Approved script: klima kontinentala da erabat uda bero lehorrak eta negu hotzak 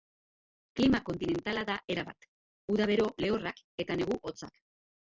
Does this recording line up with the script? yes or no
yes